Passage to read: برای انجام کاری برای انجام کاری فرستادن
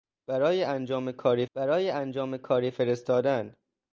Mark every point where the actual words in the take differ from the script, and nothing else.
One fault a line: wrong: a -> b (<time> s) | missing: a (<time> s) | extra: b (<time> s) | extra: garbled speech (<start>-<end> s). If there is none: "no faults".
no faults